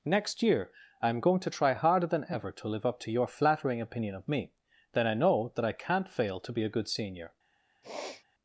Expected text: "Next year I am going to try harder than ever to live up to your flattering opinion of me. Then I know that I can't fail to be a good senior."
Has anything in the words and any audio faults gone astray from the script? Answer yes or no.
yes